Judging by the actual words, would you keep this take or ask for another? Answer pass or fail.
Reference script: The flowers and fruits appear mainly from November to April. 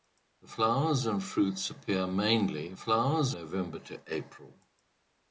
fail